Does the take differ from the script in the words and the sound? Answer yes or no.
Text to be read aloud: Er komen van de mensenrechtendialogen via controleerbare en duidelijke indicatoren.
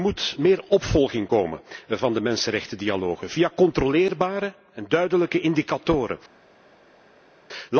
yes